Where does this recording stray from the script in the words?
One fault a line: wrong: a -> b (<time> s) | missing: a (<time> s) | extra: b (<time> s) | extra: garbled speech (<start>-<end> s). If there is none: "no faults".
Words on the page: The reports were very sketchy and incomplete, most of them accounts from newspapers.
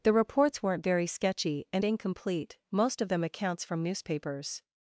wrong: were -> weren't (0.6 s)